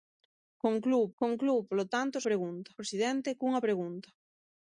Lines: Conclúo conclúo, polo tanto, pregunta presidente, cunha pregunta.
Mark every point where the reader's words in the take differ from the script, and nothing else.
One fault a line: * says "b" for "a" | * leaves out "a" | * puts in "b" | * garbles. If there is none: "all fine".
all fine